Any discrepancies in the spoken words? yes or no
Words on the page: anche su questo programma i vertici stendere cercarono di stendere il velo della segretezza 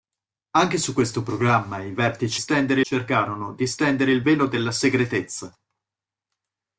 no